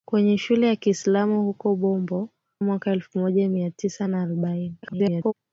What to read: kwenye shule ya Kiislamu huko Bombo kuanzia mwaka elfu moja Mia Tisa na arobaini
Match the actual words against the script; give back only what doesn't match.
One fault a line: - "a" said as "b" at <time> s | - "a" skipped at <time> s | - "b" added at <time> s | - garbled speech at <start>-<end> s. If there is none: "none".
- "kuanzia" skipped at 2.3 s
- garbled speech at 4.8-5.3 s